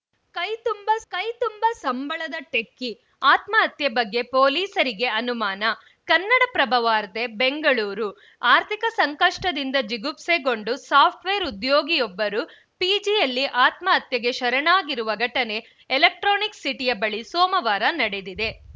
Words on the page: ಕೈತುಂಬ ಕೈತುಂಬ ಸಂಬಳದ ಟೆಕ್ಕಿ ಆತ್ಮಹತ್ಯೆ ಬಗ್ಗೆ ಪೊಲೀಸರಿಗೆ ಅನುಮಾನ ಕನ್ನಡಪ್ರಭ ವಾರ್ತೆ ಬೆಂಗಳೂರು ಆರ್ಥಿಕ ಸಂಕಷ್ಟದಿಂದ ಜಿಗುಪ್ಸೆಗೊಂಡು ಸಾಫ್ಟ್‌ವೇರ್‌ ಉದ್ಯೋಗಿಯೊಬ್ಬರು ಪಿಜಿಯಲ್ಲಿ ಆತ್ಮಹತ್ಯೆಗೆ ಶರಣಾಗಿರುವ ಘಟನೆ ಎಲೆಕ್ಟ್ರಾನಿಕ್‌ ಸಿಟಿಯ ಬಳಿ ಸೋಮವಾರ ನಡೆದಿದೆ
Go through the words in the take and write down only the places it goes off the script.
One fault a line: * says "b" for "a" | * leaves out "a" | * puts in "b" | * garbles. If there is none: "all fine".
all fine